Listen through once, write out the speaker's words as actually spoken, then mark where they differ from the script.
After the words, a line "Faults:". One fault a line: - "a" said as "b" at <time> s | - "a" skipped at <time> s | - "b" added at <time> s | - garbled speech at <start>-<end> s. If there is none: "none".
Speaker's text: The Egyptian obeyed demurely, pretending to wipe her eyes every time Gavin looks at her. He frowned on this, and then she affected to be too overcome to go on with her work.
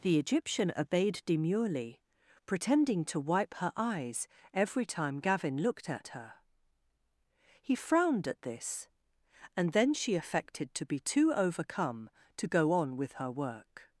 The Egyptian obeyed demurely, pretending to wipe her eyes every time Gavin looked at her. He frowned at this, and then she affected to be too overcome to go on with her work.
Faults:
- "looks" said as "looked" at 5.6 s
- "on" said as "at" at 8.3 s